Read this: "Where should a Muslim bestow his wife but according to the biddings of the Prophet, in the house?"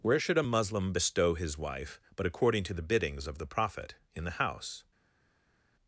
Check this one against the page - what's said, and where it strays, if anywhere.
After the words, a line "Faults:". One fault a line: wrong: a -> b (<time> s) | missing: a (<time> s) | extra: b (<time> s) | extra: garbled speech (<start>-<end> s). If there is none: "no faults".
"Where should a Muslim bestow his wife but according to the biddings of the Prophet, in the house?"
Faults:
no faults